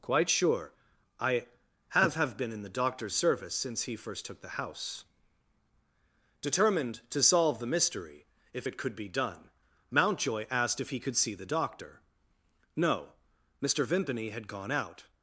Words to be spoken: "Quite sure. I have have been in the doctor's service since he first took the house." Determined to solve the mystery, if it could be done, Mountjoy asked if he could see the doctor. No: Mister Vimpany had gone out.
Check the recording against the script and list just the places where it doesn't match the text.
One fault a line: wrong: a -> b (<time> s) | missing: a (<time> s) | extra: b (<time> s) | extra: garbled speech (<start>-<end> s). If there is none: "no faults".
no faults